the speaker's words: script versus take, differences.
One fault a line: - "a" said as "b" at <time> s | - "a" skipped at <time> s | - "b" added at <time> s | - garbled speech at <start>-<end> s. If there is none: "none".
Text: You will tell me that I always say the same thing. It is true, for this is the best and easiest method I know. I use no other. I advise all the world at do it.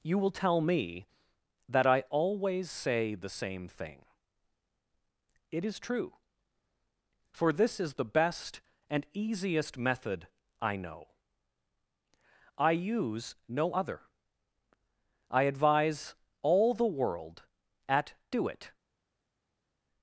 none